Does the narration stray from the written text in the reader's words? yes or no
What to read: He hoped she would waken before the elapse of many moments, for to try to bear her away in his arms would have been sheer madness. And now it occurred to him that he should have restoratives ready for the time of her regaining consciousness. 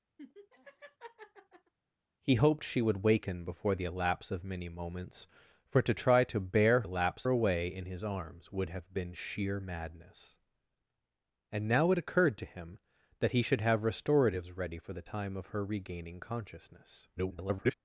yes